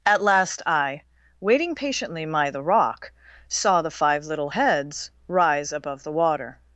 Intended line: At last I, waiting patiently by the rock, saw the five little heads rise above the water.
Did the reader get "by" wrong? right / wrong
wrong